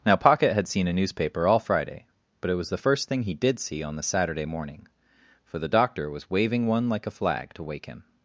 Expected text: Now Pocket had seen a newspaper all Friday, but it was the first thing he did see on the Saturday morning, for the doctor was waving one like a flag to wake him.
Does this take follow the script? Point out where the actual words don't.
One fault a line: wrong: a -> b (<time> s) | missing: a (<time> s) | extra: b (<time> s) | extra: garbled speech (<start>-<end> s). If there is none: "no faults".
no faults